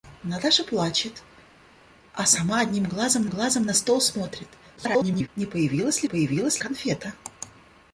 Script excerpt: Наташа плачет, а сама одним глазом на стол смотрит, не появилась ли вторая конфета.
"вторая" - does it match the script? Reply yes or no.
no